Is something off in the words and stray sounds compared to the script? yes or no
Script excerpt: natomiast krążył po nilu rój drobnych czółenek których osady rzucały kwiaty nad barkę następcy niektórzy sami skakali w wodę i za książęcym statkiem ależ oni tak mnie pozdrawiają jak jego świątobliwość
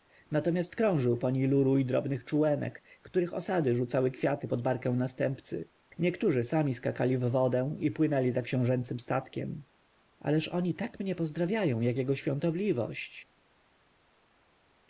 yes